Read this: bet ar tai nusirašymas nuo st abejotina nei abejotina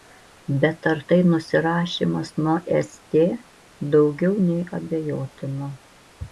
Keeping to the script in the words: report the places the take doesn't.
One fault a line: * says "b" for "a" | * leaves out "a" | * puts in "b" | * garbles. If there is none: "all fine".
* says "daugiau" for "abejotina"